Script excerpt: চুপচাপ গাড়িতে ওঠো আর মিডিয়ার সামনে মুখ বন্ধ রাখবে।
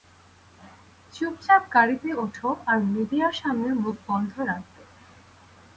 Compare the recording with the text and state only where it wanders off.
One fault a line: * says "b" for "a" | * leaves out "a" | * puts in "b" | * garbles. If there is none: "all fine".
all fine